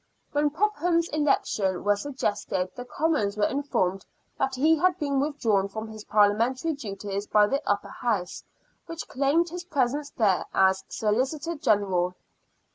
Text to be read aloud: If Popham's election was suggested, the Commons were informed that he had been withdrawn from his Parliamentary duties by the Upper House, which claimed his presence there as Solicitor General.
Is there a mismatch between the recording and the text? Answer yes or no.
yes